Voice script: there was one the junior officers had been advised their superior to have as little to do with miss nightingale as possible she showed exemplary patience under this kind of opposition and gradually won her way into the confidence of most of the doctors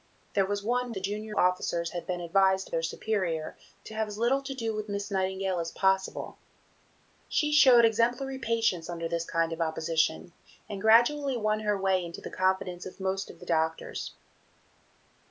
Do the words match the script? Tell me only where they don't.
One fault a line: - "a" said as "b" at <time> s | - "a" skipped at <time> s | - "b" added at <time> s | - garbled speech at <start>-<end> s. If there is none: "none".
none